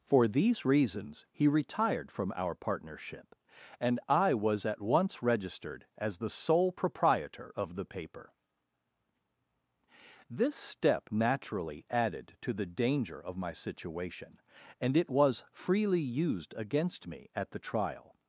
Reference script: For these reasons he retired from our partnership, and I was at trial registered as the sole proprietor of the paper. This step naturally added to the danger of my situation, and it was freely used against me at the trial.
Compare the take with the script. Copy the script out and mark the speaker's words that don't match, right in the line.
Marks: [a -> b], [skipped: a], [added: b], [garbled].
For these reasons he retired from our partnership, and I was at [trial -> once] registered as the sole proprietor of the paper. This step naturally added to the danger of my situation, and it was freely used against me at the trial.